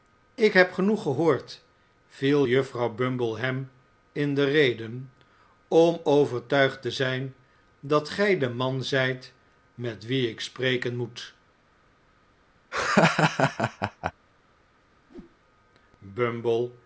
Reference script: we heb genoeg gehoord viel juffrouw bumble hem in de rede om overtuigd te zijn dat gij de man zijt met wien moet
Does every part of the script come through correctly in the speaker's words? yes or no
no